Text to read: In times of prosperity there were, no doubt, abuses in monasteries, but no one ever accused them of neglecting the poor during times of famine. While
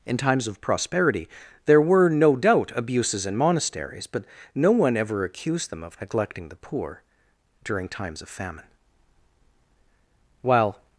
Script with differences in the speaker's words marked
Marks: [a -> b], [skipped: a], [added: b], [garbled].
In times of prosperity there were, no doubt, abuses in monasteries, but no one ever accused them of neglecting the poor during times of famine. While